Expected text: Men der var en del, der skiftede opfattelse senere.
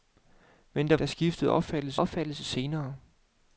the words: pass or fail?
fail